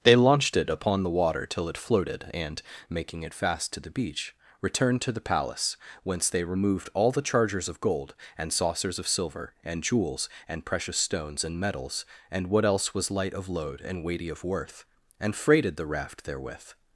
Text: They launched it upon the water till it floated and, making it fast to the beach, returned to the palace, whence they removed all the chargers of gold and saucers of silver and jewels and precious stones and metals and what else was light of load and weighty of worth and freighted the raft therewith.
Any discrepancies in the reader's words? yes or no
no